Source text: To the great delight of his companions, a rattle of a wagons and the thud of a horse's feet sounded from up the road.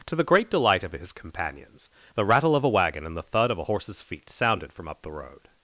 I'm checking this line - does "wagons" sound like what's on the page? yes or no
no